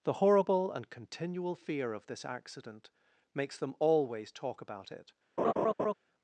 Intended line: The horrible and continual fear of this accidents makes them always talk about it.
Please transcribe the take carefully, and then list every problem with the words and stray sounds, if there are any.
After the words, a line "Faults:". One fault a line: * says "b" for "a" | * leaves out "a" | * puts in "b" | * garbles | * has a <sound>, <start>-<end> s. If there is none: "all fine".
The horrible and continual fear of this accident makes them always talk about it.
Faults:
* says "accident" for "accidents"
* has a laugh, 5.4-5.9 s